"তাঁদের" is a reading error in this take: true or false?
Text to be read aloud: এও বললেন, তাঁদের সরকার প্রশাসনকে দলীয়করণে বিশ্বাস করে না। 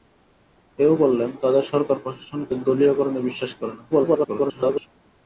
false